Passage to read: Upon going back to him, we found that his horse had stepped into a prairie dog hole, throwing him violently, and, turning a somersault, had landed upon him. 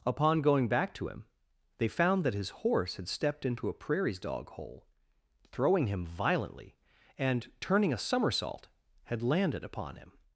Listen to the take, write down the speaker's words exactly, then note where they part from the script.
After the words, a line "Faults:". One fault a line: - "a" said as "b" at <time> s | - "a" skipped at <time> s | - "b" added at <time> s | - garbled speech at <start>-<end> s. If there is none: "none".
Upon going back to him, they found that his horse had stepped into a prairies dog hole, throwing him violently, and, turning a somersault, had landed upon him.
Faults:
- "we" said as "they" at 1.8 s
- "prairie" said as "prairies" at 3.7 s